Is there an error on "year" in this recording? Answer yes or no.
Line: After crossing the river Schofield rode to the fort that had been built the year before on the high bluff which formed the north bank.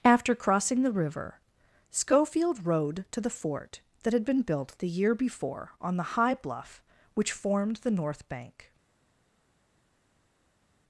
no